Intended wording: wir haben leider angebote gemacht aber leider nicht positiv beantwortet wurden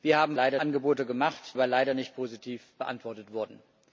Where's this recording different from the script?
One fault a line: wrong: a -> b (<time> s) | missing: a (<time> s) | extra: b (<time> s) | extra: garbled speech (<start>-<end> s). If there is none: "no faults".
no faults